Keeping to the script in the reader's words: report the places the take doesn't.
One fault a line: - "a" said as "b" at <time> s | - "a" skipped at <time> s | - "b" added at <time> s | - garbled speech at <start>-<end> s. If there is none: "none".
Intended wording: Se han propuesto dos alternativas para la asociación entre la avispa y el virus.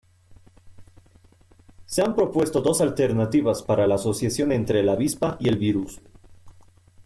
none